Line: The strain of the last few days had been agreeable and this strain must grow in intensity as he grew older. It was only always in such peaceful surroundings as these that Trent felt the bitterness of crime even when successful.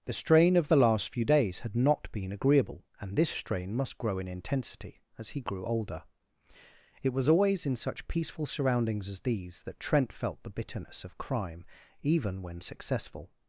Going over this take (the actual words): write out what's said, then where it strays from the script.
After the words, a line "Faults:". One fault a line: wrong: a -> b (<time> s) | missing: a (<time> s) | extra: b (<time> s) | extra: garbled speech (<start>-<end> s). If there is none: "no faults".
The strain of the last few days had not been agreeable and this strain must grow in intensity as he grew older. It was always in such peaceful surroundings as these that Trent felt the bitterness of crime even when successful.
Faults:
extra: not (1.8 s)
missing: only (7.3 s)